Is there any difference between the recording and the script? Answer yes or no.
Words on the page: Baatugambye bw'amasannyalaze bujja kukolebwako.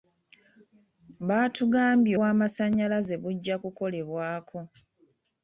no